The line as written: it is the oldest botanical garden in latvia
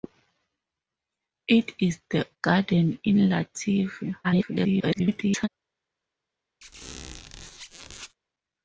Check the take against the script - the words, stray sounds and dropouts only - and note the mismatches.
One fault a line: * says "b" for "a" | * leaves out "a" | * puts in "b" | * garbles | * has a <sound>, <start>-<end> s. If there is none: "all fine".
* leaves out "oldest botanical"
* garbles
* has a squeak, 6.6-8.1 s